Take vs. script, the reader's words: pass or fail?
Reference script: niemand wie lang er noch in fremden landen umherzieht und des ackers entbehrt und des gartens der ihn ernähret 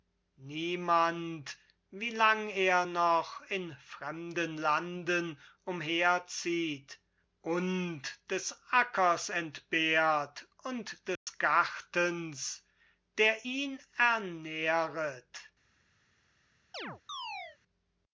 pass